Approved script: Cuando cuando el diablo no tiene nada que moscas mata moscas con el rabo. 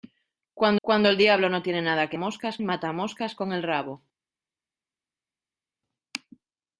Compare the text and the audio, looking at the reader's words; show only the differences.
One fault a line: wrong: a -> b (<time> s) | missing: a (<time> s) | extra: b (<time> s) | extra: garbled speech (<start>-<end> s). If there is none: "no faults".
no faults